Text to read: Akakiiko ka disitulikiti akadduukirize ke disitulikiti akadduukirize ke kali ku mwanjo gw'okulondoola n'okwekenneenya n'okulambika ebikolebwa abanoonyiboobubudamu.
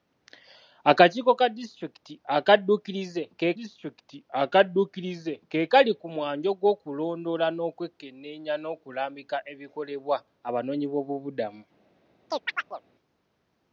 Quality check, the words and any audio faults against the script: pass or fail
fail